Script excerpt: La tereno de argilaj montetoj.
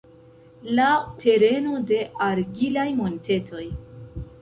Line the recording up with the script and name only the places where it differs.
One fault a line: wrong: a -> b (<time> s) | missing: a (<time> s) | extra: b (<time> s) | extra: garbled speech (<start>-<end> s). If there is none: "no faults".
no faults